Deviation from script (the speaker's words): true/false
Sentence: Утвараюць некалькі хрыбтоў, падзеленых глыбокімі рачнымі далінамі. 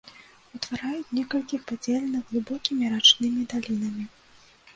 true